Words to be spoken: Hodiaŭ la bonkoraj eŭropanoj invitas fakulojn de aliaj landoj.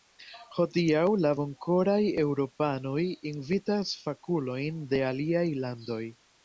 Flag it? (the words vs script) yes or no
no